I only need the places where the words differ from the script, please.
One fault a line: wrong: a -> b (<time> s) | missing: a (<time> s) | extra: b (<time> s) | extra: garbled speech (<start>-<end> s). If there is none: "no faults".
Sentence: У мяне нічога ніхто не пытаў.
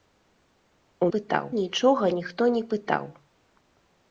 wrong: мяне -> пытаў (1.2 s)